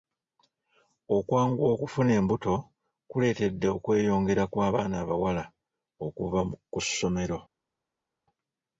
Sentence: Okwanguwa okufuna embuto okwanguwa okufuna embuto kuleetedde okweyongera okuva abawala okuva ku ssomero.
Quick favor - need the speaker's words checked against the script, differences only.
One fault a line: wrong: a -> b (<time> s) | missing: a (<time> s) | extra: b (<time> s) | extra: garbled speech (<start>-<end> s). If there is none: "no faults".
missing: okwanguwa okufuna embuto (2.5 s)
wrong: okuva -> kw'abaana (4.5 s)